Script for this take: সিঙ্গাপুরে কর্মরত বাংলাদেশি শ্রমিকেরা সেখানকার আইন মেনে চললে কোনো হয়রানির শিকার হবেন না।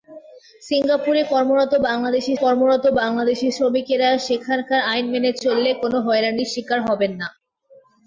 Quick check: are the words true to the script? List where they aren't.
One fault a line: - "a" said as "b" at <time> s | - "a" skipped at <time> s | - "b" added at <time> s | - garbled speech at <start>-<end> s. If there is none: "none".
- "কর্মরত বাংলাদেশি" added at 2.4 s